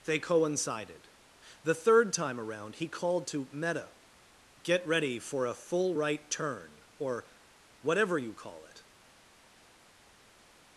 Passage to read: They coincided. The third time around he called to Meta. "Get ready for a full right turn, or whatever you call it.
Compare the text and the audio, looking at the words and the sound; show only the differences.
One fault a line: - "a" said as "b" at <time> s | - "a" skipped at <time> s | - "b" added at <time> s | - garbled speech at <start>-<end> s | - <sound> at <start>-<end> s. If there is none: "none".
none